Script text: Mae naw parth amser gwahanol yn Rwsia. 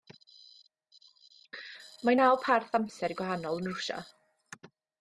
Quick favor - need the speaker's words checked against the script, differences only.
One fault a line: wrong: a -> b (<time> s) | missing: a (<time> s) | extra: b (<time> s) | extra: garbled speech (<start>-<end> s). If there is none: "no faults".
no faults